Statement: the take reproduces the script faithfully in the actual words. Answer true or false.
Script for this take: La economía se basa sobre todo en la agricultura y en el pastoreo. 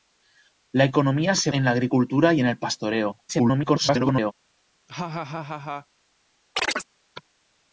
false